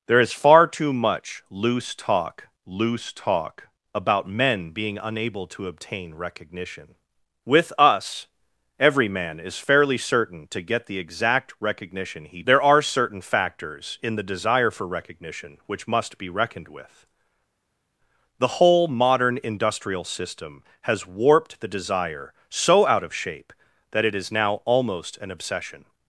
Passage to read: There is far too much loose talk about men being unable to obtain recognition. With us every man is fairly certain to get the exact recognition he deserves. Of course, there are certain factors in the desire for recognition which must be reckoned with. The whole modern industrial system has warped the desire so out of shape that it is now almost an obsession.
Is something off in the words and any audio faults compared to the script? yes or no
yes